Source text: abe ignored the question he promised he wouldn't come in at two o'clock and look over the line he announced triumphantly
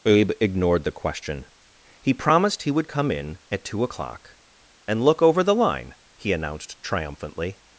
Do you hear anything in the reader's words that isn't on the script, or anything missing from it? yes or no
yes